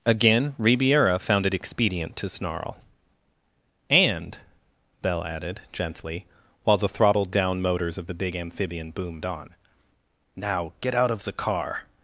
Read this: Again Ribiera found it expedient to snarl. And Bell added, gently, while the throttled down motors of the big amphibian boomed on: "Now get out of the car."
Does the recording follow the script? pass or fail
pass